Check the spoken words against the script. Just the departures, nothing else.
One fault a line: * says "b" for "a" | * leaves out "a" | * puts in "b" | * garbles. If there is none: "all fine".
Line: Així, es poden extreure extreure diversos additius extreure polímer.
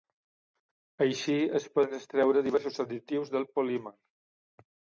* leaves out "extreure"
* says "del" for "extreure"